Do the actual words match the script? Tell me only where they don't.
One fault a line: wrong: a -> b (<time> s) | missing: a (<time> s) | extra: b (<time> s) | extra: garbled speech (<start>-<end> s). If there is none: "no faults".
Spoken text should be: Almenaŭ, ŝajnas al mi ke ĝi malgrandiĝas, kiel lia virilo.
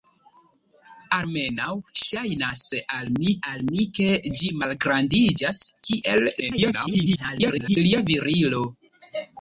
extra: al mi (3.5 s)
extra: garbled speech (6.4-7.8 s)